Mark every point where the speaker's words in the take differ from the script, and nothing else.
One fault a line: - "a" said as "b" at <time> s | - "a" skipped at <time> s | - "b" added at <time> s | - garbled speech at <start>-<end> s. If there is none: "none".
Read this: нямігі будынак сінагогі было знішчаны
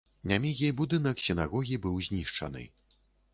- "было" said as "быў" at 1.9 s